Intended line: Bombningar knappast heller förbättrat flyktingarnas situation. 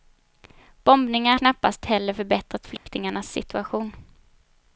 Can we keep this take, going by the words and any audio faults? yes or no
no